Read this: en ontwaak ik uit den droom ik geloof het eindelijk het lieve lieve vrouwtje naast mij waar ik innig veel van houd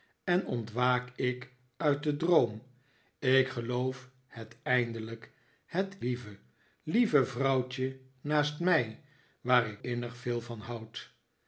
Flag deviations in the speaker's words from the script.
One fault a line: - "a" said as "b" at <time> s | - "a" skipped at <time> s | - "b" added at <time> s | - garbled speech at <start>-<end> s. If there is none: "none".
none